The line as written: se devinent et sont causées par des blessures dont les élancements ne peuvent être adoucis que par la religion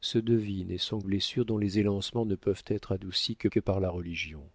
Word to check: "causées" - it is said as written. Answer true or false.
false